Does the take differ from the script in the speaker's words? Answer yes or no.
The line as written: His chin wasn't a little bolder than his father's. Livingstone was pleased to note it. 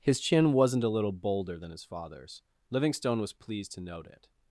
no